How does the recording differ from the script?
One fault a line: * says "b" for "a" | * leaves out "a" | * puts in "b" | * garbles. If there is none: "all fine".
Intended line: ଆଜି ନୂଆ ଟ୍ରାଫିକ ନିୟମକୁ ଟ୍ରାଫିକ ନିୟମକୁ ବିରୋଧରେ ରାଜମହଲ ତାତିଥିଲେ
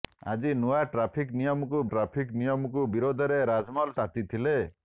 all fine